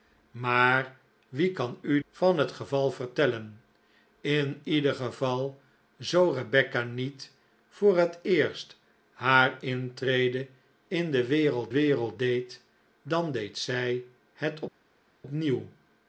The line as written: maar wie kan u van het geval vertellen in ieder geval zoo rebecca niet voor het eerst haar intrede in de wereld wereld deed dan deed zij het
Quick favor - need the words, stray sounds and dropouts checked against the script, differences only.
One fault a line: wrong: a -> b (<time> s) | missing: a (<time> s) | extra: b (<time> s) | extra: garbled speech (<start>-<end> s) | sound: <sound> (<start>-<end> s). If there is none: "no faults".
no faults